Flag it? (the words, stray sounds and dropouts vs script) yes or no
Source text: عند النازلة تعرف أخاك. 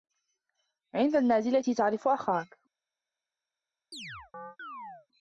yes